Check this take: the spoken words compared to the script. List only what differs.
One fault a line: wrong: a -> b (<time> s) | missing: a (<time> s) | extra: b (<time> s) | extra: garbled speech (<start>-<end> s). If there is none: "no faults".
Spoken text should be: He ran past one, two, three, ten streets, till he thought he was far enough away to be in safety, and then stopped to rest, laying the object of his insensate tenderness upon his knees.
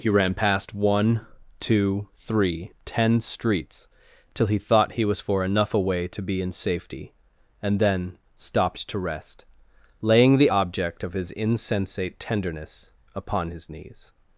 wrong: far -> for (5.2 s)